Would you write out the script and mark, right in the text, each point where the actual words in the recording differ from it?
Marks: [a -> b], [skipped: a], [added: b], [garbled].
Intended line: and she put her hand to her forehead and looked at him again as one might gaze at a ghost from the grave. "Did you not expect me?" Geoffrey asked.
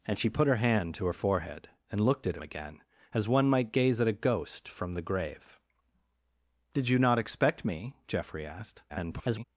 and she put her hand to her forehead and looked at [skipped: him] again as one might gaze at a ghost from the grave. "Did you not expect me?" Geoffrey asked. [garbled]